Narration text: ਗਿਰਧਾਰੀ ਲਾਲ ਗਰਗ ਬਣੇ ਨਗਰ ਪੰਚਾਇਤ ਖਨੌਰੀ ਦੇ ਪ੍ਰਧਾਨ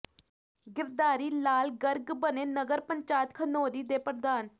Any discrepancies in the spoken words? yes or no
no